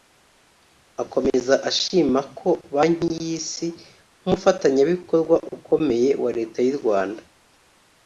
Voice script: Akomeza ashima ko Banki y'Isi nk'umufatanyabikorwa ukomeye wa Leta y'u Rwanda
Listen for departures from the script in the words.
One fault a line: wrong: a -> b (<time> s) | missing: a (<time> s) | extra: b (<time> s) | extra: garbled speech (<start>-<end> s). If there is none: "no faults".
no faults